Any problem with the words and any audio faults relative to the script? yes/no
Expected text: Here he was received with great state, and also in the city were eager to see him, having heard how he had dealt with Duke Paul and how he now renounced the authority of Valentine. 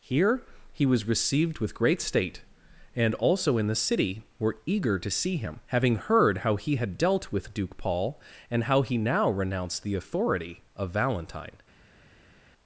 no